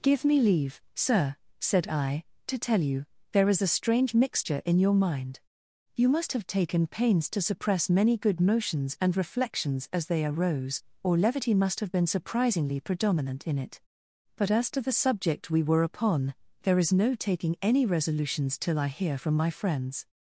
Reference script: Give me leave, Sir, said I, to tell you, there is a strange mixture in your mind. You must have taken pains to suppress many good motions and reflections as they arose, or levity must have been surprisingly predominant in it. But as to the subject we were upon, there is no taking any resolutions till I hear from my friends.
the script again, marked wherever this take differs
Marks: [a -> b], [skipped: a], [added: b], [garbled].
Give me leave, Sir, said I, to tell you, there is a strange mixture in your mind. You must have taken pains to suppress many good motions and reflections as they arose, or levity must have been surprisingly predominant in it. But as to the subject we were upon, there is no taking any resolutions till I hear from my friends.